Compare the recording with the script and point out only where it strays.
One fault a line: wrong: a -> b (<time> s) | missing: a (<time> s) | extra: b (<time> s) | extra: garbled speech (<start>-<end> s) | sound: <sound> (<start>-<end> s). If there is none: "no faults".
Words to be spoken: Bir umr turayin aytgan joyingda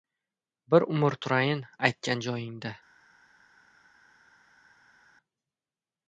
no faults